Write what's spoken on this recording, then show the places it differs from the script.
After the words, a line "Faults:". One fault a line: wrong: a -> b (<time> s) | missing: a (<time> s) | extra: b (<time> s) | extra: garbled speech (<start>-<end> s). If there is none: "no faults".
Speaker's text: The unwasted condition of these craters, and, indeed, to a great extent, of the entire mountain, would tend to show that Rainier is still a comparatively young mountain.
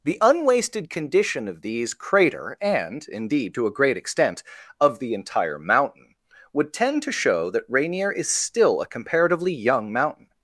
The unwasted condition of these crater, and, indeed, to a great extent, of the entire mountain, would tend to show that Rainier is still a comparatively young mountain.
Faults:
wrong: craters -> crater (1.9 s)